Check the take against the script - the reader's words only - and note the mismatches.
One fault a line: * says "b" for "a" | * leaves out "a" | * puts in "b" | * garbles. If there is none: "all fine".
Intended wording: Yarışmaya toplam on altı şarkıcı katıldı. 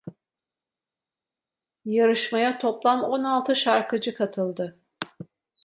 all fine